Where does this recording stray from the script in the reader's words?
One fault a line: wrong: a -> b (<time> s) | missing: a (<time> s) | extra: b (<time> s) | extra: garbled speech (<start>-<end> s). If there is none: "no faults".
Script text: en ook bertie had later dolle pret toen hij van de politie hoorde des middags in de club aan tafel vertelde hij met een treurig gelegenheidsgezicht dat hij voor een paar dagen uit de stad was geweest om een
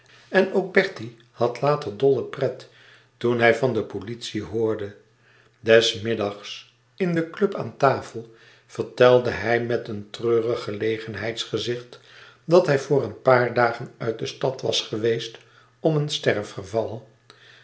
no faults